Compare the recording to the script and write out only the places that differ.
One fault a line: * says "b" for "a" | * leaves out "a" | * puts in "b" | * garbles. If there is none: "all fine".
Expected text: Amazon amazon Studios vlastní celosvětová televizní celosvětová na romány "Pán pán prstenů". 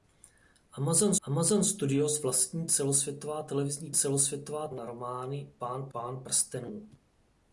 all fine